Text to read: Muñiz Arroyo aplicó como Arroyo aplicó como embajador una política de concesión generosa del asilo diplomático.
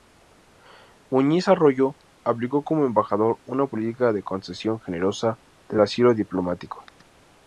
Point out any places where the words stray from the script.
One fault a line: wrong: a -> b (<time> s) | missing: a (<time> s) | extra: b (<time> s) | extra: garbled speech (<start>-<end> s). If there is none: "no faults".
missing: Arroyo aplicó como (2.9 s)